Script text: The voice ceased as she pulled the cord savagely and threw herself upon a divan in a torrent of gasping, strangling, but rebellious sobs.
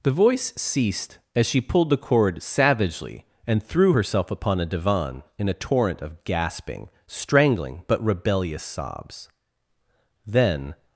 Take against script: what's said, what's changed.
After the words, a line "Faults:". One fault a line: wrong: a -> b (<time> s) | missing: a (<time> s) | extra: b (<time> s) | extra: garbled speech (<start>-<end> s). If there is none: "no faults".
The voice ceased as she pulled the cord savagely and threw herself upon a divan in a torrent of gasping, strangling, but rebellious sobs. Then
Faults:
extra: Then (10.2 s)